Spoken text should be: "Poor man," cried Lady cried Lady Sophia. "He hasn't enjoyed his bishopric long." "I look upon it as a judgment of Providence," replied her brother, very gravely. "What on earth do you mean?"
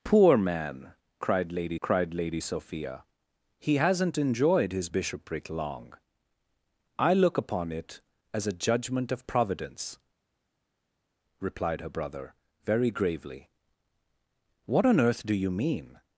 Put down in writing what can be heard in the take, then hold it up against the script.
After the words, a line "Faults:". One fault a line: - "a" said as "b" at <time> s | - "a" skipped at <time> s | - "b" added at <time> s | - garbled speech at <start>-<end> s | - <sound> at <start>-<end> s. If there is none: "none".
"Poor man," cried Lady cried Lady Sophia. "He hasn't enjoyed his bishopric long." "I look upon it as a judgment of Providence," replied her brother, very gravely. "What on earth do you mean?"
Faults:
none